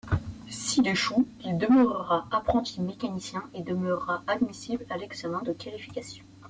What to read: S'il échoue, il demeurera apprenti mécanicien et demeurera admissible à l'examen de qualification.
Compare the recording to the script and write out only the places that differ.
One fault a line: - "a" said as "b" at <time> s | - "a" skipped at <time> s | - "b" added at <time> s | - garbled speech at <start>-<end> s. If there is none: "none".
none